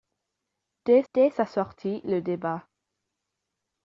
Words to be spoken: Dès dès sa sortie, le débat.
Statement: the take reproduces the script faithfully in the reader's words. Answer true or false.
true